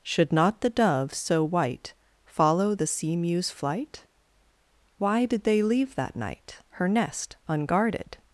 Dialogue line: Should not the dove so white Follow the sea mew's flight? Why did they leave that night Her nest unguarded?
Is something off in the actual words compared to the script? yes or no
no